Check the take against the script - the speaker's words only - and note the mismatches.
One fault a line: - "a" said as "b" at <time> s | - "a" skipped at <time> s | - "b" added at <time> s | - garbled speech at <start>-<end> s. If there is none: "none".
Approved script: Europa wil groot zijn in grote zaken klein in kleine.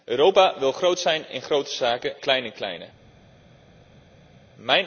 none